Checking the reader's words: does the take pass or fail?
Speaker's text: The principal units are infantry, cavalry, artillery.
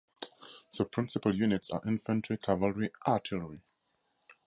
pass